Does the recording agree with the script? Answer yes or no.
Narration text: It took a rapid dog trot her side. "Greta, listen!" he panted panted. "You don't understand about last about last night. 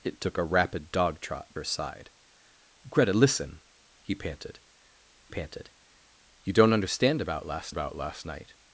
yes